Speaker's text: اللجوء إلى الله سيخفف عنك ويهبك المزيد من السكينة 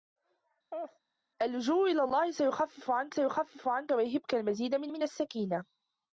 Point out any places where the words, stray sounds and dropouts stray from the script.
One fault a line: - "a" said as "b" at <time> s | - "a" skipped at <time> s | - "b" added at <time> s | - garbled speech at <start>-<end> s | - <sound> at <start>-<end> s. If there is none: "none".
- laugh at 0.7-1.0 s
- "سيخفف عنك" added at 3.1 s
- "من" added at 4.9 s